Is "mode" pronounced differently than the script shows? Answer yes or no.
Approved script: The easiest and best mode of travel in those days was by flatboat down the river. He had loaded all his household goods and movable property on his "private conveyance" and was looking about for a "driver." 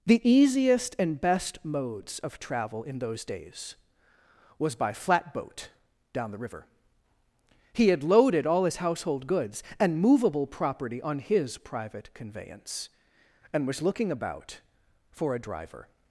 yes